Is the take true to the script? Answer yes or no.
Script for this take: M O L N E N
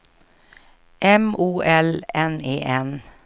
yes